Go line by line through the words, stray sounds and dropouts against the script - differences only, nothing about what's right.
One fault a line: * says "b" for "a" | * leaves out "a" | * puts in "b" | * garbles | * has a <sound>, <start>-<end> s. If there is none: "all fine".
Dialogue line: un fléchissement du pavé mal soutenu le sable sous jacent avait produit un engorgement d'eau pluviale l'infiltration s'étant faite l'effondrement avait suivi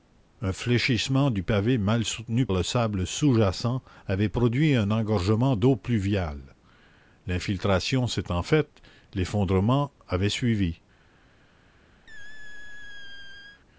* has a squeak, 12.1-13.6 s